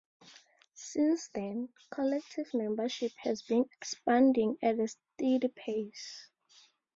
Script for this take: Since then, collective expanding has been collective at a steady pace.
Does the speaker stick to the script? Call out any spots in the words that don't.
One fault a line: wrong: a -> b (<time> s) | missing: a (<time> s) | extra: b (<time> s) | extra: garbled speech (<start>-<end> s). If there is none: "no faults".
wrong: expanding -> membership (2.5 s)
wrong: collective -> expanding (3.7 s)